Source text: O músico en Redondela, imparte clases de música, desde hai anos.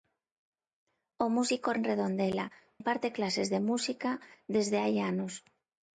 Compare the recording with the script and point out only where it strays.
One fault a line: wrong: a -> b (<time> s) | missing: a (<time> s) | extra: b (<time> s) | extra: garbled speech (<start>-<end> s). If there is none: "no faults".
no faults